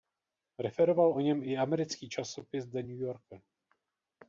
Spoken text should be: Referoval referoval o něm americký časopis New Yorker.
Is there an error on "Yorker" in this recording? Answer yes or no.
no